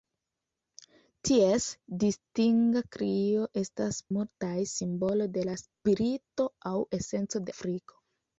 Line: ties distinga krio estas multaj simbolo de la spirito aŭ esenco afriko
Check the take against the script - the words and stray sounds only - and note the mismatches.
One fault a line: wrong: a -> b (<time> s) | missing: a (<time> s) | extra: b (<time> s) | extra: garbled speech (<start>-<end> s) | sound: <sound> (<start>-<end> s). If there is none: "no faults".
no faults